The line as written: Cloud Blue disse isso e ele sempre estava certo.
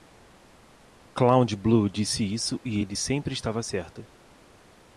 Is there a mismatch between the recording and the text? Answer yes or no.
no